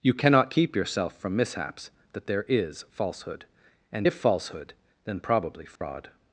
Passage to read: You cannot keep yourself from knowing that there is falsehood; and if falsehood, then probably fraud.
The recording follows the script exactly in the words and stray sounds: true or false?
false